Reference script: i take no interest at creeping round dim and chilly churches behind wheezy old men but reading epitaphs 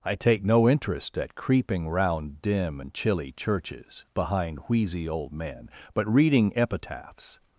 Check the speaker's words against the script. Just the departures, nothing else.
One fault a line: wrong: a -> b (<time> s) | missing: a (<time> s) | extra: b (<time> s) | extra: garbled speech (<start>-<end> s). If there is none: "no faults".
no faults